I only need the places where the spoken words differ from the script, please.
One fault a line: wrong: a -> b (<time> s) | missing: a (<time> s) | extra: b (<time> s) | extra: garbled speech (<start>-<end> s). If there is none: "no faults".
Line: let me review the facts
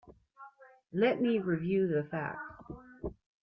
no faults